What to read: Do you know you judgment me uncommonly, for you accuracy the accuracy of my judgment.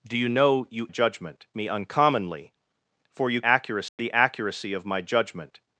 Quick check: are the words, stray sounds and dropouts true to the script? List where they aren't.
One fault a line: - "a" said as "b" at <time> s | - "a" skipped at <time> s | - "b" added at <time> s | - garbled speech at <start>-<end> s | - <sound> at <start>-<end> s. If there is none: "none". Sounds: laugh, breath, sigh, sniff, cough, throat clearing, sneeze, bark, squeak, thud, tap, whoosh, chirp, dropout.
- dropout at 3.9-4.0 s